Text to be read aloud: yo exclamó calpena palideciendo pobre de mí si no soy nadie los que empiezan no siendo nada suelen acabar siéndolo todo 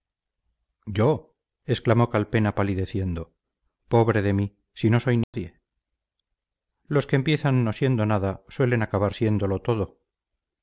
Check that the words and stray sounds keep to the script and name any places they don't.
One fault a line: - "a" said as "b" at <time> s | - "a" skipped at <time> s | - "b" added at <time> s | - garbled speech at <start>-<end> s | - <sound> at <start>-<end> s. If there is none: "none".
- dropout at 5.2-5.3 s